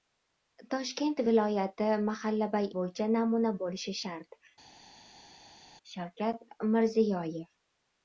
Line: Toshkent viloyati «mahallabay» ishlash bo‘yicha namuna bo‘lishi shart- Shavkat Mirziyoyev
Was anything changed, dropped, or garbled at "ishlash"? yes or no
yes